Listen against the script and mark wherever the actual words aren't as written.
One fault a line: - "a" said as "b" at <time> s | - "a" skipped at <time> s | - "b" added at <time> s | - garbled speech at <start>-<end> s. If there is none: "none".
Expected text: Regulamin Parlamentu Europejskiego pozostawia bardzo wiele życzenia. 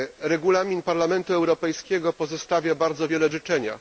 none